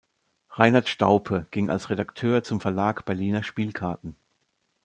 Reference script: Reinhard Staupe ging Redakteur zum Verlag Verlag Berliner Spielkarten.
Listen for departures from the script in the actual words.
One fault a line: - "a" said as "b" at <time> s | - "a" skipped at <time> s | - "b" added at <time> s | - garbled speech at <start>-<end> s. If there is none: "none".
- "als" added at 1.7 s
- "Verlag" skipped at 3.1 s